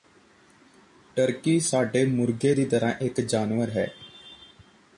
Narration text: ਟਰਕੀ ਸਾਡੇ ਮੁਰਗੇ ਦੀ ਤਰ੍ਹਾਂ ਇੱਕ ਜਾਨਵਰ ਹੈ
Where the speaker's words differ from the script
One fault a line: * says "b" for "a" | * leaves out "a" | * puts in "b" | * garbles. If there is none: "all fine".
all fine